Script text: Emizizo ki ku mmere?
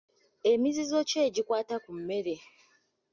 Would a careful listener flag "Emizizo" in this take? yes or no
no